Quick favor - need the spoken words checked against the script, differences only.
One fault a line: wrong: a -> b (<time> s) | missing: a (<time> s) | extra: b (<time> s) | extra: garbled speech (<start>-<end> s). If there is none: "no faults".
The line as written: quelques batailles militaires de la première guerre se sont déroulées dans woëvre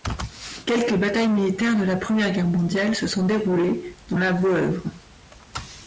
extra: mondiale (2.5 s)
extra: la (4.2 s)